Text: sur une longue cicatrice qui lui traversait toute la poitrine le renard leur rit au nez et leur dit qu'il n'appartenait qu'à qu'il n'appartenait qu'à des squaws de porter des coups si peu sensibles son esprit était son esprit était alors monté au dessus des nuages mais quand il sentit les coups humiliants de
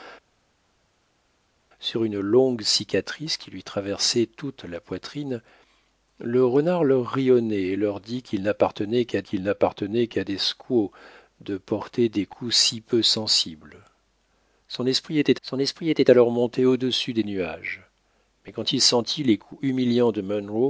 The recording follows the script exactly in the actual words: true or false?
true